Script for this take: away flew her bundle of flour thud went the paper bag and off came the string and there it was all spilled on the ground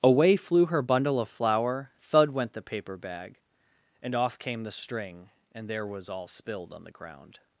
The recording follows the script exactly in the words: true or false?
false